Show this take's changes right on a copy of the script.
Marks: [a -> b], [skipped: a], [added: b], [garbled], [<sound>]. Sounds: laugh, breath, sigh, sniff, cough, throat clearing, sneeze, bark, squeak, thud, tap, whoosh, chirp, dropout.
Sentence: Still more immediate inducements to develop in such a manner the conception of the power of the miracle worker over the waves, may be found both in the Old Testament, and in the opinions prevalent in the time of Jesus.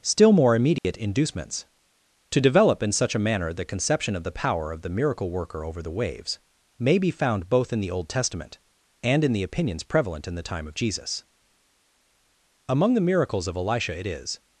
Still more immediate [dropout] inducements to develop in such a manner the conception of the power of the miracle worker over the waves, may be found both in the Old Testament, and in the opinions prevalent in the time of Jesus. [added: Among the miracles of Elisha it is]